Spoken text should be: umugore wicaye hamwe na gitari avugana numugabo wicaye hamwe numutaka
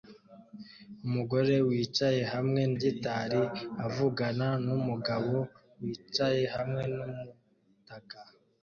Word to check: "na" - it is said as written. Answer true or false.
false